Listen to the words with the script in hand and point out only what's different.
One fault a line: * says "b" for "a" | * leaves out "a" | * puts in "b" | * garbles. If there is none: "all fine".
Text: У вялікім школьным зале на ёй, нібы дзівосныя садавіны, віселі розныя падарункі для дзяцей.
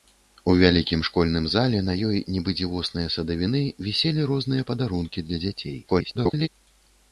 * garbles